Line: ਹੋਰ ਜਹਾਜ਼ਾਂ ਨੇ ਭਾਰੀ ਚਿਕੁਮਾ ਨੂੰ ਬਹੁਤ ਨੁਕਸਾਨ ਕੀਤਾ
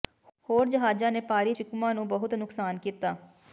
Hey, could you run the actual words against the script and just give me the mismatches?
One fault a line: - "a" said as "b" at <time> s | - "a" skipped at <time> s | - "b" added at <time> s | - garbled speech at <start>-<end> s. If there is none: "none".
none